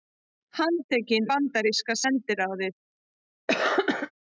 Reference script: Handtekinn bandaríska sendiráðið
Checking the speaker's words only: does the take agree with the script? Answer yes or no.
yes